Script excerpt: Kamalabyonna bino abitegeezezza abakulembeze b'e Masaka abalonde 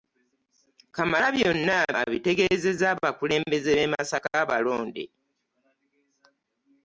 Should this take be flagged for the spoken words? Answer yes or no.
yes